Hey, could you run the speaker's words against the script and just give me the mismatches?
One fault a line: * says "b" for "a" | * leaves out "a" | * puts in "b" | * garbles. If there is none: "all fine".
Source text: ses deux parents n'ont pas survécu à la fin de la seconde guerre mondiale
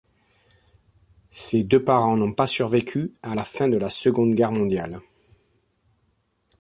all fine